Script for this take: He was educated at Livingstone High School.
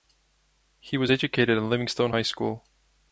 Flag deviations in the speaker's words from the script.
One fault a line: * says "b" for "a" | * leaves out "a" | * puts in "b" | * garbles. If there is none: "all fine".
all fine